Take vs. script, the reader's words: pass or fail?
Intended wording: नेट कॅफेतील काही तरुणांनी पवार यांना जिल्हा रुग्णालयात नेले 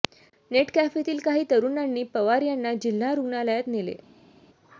pass